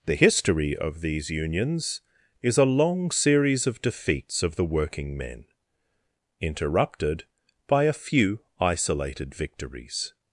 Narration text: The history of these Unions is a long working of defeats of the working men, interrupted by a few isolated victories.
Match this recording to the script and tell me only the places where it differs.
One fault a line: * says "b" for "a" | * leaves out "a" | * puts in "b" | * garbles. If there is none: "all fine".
* says "series" for "working"